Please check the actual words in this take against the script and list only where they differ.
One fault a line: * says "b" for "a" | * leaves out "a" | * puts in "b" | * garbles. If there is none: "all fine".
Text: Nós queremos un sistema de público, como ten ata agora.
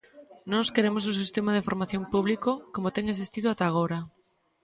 * puts in "formación"
* puts in "existido"